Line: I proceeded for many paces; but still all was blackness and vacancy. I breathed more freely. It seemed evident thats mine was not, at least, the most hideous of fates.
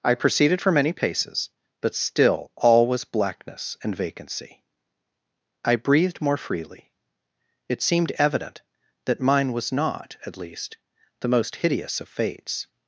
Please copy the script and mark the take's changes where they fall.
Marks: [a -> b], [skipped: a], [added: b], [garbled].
I proceeded for many paces; but still all was blackness and vacancy. I breathed more freely. It seemed evident [thats -> that] mine was not, at least, the most hideous of fates.